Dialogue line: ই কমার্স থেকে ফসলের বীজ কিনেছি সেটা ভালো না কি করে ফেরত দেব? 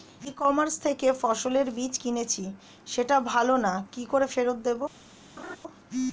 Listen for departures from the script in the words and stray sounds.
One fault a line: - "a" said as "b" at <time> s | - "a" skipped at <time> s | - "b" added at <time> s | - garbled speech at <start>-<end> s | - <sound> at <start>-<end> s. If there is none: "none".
- laugh at 5.4-5.6 s